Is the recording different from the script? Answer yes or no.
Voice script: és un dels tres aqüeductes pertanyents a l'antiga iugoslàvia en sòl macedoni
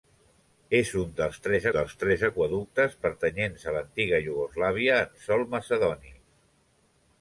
yes